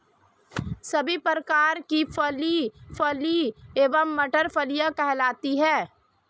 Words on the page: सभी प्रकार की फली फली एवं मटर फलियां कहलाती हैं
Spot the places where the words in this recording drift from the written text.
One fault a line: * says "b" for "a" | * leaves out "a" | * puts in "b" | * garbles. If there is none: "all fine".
all fine